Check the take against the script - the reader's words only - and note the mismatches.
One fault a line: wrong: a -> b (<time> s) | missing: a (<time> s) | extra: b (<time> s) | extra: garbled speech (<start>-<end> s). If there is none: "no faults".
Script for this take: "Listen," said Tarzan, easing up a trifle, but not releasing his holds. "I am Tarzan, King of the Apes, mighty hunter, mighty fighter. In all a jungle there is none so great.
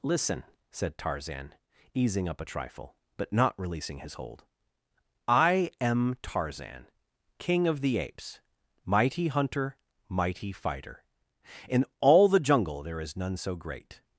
wrong: holds -> hold (4.2 s)
wrong: a -> the (12.3 s)